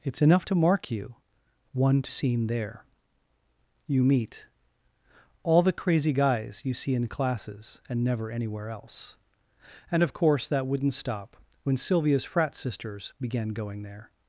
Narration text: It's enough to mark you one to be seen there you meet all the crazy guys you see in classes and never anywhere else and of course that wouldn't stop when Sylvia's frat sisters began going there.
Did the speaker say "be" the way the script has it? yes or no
no